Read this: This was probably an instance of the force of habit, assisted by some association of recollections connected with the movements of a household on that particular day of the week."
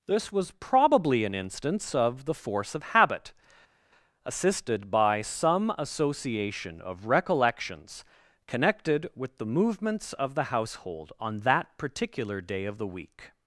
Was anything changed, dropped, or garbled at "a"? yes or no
yes